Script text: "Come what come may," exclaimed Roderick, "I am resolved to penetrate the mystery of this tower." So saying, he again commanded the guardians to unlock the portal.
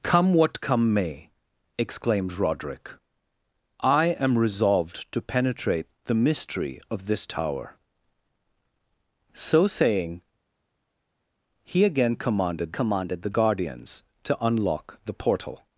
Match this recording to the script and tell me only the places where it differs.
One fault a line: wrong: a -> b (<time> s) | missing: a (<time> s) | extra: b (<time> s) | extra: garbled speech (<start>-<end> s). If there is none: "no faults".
extra: commanded (12.7 s)